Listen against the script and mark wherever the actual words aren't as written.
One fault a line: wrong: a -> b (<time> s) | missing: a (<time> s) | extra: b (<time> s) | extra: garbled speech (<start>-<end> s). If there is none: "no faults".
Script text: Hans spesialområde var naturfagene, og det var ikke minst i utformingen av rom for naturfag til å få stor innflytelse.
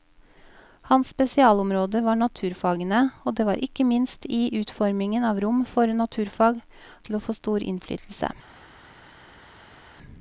no faults